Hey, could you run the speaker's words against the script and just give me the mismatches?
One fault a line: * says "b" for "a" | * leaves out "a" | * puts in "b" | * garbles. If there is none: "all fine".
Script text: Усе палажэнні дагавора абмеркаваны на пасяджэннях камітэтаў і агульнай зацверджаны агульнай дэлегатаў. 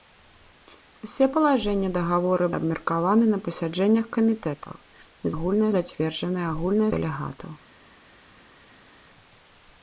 all fine